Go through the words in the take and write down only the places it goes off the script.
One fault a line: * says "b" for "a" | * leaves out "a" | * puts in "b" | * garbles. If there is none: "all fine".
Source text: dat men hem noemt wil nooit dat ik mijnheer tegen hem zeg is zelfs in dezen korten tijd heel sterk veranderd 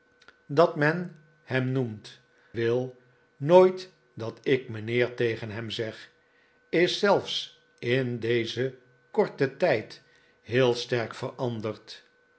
all fine